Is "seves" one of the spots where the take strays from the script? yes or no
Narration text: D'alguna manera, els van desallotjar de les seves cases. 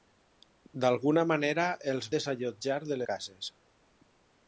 yes